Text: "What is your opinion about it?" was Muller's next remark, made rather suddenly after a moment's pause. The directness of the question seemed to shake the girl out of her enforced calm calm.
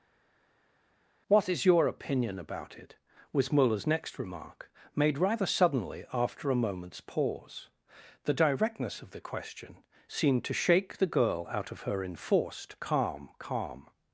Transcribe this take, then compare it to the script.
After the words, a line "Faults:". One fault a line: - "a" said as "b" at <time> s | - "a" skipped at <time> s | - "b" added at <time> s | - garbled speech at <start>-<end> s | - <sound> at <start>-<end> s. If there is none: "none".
"What is your opinion about it?" was Muller's next remark, made rather suddenly after a moment's pause. The directness of the question seemed to shake the girl out of her enforced calm calm.
Faults:
none